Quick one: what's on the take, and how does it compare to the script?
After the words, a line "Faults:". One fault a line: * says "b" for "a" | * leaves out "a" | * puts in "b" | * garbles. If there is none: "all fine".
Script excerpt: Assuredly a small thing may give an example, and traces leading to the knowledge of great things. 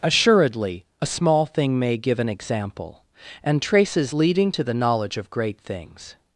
Assuredly a small thing may give an example, and traces leading to the knowledge of great things.
Faults:
all fine